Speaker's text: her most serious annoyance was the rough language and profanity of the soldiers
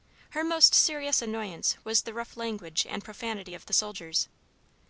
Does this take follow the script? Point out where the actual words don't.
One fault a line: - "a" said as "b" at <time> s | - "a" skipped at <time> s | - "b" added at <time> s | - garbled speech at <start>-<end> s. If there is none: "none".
none